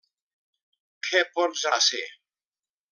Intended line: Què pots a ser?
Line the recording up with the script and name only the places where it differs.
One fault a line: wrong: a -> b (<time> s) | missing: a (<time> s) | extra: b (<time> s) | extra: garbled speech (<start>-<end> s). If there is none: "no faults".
no faults